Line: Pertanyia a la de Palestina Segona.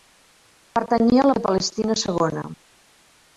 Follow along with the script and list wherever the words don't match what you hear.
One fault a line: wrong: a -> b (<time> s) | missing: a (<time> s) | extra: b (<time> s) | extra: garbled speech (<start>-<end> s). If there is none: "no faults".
no faults